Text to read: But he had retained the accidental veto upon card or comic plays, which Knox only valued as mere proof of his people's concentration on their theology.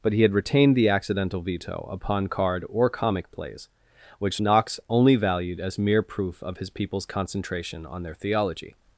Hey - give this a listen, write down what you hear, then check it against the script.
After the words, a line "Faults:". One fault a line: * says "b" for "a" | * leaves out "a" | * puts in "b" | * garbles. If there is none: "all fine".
But he had retained the accidental veto upon card or comic plays, which Knox only valued as mere proof of his people's concentration on their theology.
Faults:
all fine